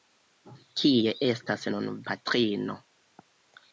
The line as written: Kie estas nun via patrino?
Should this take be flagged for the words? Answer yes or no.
yes